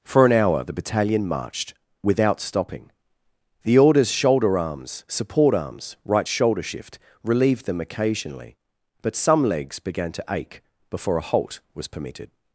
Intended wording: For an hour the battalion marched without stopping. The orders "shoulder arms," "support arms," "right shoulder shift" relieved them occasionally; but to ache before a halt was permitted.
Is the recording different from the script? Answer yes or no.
yes